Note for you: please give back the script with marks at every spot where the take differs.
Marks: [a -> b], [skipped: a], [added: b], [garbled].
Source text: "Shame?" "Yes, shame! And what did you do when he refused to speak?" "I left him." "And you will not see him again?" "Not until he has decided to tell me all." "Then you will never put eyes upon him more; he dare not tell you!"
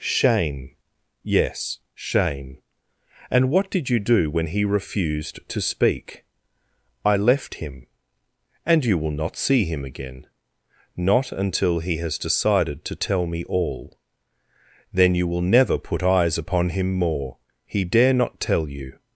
"Shame?" "Yes, shame! And what did you do when he refused to speak?" "I left him." "And you will not see him again?" "Not until he has decided to tell me all." "Then you will never put eyes upon him more; he dare not tell you!"